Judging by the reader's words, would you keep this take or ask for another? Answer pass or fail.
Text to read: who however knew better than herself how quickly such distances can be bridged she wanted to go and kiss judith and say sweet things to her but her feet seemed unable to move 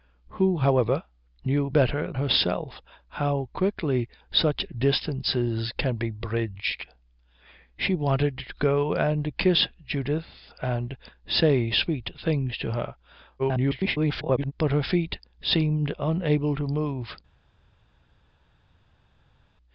fail